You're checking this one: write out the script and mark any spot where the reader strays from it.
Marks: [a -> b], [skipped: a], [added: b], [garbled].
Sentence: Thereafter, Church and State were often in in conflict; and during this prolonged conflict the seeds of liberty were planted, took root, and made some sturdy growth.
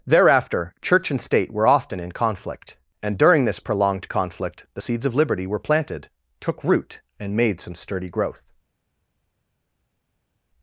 Thereafter, Church and State were often in [skipped: in] conflict; and during this prolonged conflict the seeds of liberty were planted, took root, and made some sturdy growth.